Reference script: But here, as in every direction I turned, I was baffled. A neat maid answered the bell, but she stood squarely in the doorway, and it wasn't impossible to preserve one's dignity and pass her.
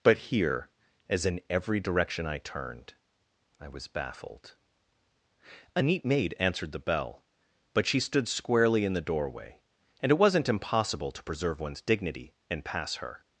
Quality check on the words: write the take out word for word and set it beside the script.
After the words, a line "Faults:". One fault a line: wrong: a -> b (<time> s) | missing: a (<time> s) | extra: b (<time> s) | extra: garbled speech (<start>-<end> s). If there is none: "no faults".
But here, as in every direction I turned, I was baffled. A neat maid answered the bell, but she stood squarely in the doorway, and it wasn't impossible to preserve one's dignity and pass her.
Faults:
no faults